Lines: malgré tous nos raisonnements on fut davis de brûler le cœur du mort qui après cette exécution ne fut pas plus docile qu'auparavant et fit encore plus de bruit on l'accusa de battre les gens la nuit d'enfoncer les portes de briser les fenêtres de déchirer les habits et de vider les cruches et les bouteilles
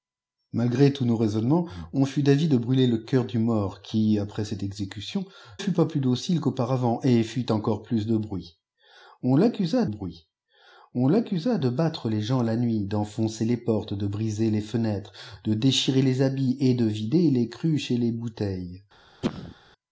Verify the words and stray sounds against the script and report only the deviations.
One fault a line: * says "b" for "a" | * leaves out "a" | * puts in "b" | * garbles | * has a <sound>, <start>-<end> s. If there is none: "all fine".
* leaves out "ne"
* puts in "bruit on l'accusa"
* has a cough, 19.2-19.5 s